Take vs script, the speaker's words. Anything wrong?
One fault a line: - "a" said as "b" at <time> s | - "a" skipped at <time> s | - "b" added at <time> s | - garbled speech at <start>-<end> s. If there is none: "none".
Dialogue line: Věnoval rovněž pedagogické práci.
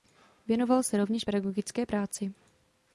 - "se" added at 0.8 s